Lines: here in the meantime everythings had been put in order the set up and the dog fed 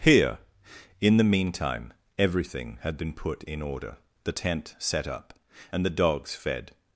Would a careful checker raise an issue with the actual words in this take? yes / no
yes